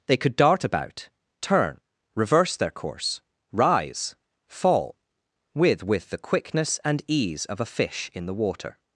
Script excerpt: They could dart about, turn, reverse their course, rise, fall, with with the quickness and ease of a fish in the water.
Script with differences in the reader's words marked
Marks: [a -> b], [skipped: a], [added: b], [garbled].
They could dart about, turn, reverse their course, rise, fall, with with the quickness and ease of a fish in the water.